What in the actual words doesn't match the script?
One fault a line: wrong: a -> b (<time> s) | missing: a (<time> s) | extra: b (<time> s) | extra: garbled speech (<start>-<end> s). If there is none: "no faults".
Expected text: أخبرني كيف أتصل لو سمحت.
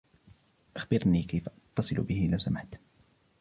extra: به (1.9 s)